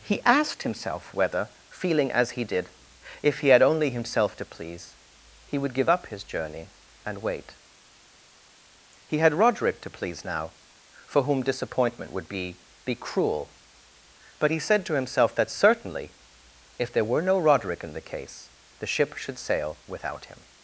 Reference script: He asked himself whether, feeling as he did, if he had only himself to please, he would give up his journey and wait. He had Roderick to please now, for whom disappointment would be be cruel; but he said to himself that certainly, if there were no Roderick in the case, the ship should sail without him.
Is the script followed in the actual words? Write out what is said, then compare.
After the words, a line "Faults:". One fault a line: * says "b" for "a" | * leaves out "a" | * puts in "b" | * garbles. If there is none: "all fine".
He asked himself whether, feeling as he did, if he had only himself to please, he would give up his journey and wait. He had Roderick to please now, for whom disappointment would be be cruel; but he said to himself that certainly, if there were no Roderick in the case, the ship should sail without him.
Faults:
all fine